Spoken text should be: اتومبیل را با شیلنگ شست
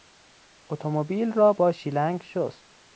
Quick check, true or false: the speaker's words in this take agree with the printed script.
true